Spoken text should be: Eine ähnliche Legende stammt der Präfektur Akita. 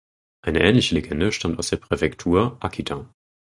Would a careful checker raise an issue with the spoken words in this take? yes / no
yes